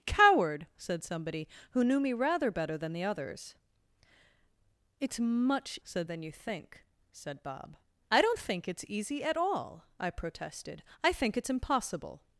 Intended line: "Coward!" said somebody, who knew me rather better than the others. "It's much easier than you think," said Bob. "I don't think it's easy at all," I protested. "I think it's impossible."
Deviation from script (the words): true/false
true